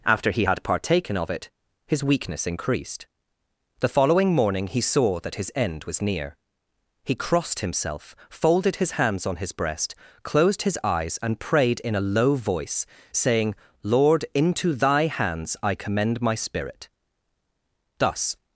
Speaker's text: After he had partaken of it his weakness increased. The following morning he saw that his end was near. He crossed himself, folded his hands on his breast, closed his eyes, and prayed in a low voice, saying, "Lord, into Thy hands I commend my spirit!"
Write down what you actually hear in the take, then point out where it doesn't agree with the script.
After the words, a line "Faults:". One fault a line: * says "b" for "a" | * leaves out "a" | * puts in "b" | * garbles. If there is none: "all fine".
After he had partaken of it his weakness increased. The following morning he saw that his end was near. He crossed himself, folded his hands on his breast, closed his eyes, and prayed in a low voice, saying, "Lord, into Thy hands I commend my spirit!" Thus
Faults:
* puts in "Thus"